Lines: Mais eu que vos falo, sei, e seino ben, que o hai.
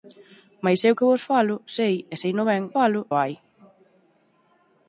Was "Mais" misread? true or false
false